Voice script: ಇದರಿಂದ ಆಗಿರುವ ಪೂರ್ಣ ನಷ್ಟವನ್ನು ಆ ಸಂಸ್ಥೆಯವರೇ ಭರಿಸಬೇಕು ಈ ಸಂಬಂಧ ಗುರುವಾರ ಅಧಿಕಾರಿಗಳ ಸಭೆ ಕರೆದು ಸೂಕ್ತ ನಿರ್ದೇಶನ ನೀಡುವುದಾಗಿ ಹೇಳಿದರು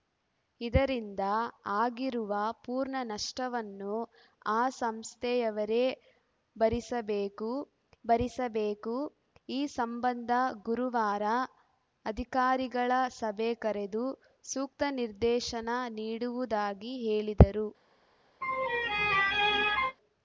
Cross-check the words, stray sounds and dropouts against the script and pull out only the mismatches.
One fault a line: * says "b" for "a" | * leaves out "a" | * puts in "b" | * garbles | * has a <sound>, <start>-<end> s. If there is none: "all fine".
* puts in "ಭರಿಸಬೇಕು"
* has a laugh, 18.4-20.0 s